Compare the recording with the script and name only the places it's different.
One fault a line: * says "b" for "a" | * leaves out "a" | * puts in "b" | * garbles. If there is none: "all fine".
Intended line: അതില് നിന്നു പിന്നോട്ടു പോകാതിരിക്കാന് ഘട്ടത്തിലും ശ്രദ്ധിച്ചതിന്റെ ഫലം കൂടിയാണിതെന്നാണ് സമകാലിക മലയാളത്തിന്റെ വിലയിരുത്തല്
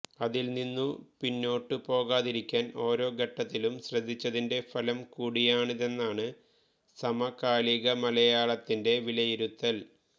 * puts in "ഓരോ"